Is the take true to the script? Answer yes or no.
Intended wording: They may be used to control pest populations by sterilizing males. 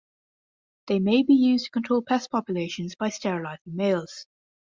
yes